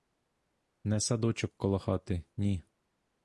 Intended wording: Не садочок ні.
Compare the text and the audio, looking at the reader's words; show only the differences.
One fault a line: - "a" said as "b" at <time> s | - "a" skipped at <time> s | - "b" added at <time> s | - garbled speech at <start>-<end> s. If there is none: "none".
- "коло хати" added at 1.6 s